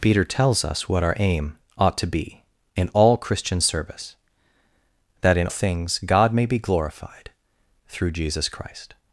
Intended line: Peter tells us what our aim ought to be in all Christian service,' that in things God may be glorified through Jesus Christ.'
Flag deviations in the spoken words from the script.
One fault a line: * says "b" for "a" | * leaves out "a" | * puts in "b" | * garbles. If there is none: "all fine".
all fine